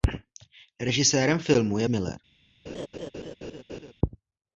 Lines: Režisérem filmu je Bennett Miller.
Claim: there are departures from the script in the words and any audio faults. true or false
true